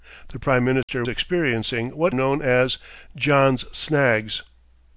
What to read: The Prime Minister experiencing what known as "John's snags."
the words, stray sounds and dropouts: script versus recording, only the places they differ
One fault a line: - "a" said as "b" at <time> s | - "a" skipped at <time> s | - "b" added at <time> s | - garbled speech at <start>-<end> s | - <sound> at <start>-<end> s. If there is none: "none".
- dropout at 0.8-0.9 s